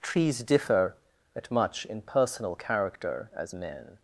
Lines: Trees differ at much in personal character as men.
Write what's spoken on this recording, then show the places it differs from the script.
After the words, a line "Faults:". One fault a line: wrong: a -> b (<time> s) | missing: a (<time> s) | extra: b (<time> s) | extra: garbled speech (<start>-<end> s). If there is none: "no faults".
Trees differ at much in personal character as men.
Faults:
no faults